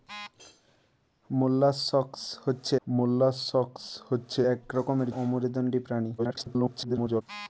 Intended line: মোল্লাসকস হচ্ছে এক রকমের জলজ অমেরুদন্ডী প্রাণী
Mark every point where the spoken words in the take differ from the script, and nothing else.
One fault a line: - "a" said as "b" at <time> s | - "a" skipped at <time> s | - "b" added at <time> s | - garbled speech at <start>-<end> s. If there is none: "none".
- "মোল্লাসকস হচ্ছে" added at 2.9 s
- "জলজ" skipped at 5.1 s
- garbled speech at 6.2-7.2 s